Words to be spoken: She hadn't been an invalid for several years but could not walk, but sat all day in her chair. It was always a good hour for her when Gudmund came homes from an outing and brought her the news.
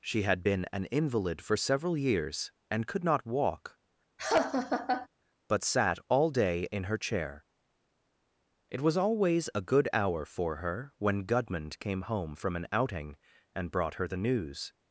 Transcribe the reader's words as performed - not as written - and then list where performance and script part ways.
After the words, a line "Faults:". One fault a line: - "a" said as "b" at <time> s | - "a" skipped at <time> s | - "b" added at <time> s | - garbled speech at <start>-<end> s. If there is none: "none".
She had been an invalid for several years and could not walk, but sat all day in her chair. It was always a good hour for her when Gudmund came home from an outing and brought her the news.
Faults:
- "hadn't" said as "had" at 0.2 s
- "but" said as "and" at 2.7 s
- "homes" said as "home" at 12.0 s